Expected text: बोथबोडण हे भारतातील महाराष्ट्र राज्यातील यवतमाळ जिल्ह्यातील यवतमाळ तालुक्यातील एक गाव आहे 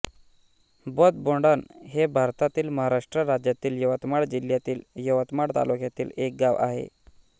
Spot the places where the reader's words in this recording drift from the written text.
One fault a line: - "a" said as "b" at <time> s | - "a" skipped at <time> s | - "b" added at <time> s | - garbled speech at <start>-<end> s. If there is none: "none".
none